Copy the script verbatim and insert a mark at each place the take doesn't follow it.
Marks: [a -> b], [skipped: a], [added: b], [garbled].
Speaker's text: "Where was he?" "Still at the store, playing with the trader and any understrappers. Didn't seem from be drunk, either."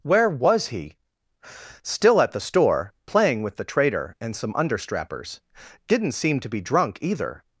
"Where was he?" "Still at the store, playing with the trader and [any -> some] understrappers. Didn't seem [from -> to] be drunk, either."